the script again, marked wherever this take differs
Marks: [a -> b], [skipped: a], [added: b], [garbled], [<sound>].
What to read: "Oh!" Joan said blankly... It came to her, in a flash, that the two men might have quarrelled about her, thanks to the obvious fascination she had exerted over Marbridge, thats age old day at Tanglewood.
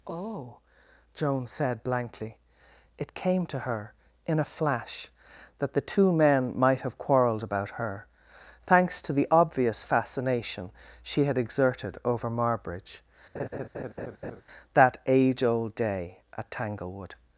"Oh!" Joan said blankly... It came to her, in a flash, that the two men might have quarrelled about her, thanks to the obvious fascination she had exerted over Marbridge, [laugh] [thats -> that] age old day at Tanglewood.